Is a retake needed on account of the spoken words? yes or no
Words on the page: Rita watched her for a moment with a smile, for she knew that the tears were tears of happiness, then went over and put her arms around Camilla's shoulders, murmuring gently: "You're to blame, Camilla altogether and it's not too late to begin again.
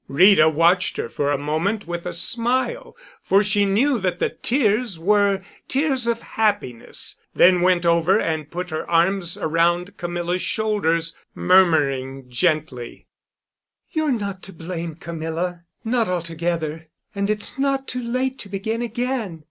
yes